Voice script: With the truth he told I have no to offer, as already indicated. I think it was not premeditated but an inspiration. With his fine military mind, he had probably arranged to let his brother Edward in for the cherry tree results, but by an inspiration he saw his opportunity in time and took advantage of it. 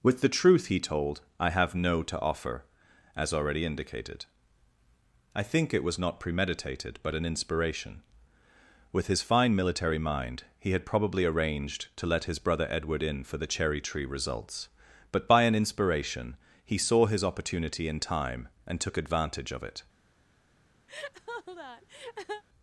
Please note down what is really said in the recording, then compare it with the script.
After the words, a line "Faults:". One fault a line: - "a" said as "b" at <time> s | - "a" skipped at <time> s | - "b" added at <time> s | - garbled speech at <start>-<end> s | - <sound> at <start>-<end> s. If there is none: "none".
With the truth he told I have no to offer, as already indicated. I think it was not premeditated but an inspiration. With his fine military mind, he had probably arranged to let his brother Edward in for the cherry tree results, but by an inspiration he saw his opportunity in time and took advantage of it.
Faults:
- laugh at 20.9-22.4 s